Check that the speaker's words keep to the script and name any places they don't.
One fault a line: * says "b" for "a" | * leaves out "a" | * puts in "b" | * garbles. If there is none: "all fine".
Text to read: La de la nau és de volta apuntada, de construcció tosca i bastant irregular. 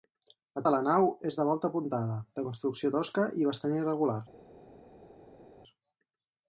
all fine